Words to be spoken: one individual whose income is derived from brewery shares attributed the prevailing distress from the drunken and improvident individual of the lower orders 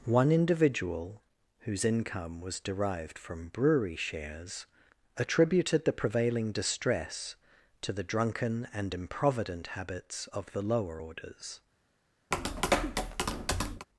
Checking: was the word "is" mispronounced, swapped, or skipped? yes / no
yes